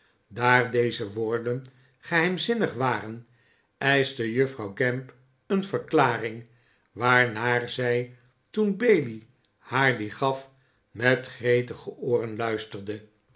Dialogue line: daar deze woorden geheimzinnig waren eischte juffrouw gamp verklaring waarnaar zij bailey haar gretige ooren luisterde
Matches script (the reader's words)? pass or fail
fail